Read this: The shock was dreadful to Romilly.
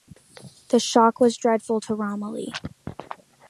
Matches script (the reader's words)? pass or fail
pass